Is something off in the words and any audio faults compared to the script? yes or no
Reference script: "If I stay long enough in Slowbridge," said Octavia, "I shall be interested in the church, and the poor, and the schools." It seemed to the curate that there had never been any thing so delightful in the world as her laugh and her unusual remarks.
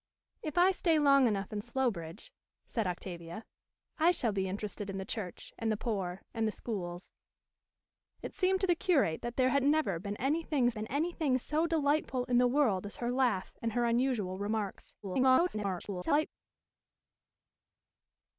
yes